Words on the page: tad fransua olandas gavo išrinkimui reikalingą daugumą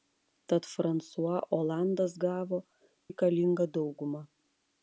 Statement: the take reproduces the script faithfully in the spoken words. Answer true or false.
false